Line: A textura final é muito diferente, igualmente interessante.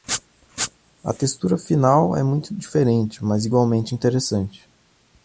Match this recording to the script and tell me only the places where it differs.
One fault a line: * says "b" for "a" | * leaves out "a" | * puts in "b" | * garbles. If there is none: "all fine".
* puts in "mas"